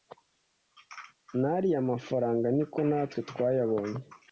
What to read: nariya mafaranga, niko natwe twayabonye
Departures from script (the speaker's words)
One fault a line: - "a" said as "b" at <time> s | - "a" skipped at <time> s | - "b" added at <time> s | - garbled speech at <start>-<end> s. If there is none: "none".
none